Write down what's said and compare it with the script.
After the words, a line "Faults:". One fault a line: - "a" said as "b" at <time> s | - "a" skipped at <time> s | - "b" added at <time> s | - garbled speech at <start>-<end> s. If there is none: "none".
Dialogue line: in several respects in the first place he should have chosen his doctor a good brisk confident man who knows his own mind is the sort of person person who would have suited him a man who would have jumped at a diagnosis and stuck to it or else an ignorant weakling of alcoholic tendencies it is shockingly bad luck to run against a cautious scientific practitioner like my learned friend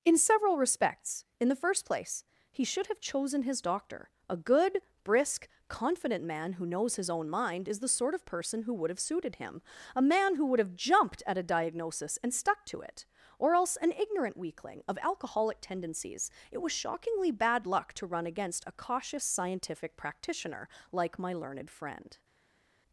in several respects in the first place he should have chosen his doctor a good brisk confident man who knows his own mind is the sort of person who would have suited him a man who would have jumped at a diagnosis and stuck to it or else an ignorant weakling of alcoholic tendencies it was shockingly bad luck to run against a cautious scientific practitioner like my learned friend
Faults:
- "person" skipped at 8.6 s
- "is" said as "was" at 16.6 s